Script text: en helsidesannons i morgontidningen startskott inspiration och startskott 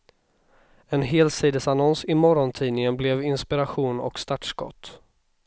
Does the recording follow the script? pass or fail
fail